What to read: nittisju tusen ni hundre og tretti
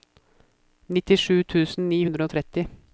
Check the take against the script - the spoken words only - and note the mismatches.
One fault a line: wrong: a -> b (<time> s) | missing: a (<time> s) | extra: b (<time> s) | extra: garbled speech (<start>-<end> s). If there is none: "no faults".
no faults